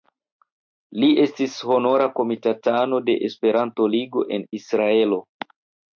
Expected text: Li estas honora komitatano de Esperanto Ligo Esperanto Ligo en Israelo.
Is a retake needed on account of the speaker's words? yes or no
yes